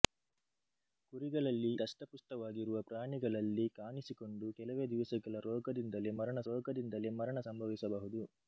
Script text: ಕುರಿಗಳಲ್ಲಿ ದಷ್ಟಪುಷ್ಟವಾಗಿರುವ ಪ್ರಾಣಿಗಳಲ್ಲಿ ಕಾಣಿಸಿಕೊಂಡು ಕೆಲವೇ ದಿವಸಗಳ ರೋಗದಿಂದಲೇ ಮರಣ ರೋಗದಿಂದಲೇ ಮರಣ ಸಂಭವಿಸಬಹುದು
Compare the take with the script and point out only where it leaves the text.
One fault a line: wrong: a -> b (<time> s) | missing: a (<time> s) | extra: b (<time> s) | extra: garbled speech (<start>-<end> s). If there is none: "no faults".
no faults